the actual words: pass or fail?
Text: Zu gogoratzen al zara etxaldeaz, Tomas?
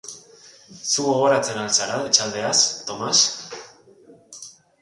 pass